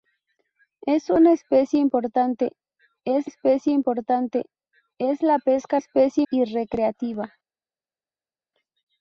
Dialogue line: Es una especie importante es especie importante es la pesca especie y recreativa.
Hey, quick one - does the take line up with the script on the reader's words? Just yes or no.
yes